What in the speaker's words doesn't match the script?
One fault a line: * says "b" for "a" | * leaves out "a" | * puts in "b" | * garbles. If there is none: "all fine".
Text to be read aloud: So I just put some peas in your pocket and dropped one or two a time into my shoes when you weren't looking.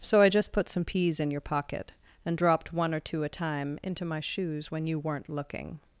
all fine